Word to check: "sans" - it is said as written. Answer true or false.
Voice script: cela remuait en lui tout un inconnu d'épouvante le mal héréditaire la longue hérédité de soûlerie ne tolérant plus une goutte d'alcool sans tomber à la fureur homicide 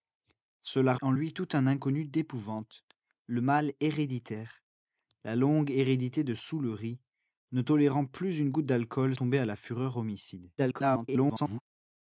false